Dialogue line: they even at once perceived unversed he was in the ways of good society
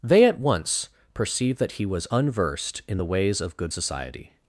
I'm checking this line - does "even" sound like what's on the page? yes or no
no